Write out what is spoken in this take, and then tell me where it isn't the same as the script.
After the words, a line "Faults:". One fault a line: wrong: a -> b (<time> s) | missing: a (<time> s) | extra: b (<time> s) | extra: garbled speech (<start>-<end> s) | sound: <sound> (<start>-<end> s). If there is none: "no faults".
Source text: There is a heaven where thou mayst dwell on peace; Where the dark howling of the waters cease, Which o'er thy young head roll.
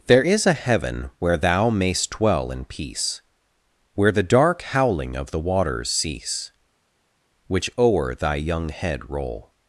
There is a heaven where thou mayst dwell in peace; Where the dark howling of the waters cease, Which o'er thy young head roll.
Faults:
wrong: on -> in (2.5 s)